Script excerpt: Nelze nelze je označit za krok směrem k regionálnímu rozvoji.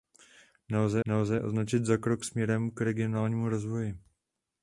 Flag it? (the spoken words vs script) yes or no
no